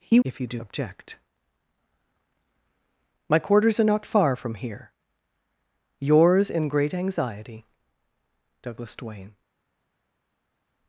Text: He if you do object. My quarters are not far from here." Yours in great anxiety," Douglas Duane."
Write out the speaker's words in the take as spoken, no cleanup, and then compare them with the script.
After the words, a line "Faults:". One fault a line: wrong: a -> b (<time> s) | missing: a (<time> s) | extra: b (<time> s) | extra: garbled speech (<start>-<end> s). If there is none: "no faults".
He if you do object. My quarters are not far from here." Yours in great anxiety," Douglas Duane."
Faults:
no faults